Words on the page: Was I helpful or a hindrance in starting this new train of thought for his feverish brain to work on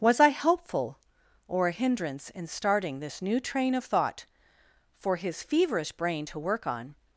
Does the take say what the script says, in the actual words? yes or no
yes